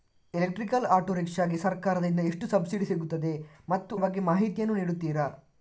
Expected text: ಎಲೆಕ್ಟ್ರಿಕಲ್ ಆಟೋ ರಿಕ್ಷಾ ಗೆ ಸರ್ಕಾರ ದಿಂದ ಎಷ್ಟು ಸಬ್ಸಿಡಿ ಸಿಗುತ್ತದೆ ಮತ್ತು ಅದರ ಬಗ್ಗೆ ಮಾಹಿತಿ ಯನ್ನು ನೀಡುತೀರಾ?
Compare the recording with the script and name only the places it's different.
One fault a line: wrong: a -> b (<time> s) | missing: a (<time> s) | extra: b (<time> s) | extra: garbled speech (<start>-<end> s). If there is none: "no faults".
missing: ಅದರ (3.9 s)